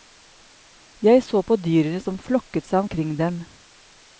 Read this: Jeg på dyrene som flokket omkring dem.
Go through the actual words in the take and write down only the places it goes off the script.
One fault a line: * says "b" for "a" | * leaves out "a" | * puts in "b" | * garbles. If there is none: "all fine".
* puts in "så"
* puts in "seg"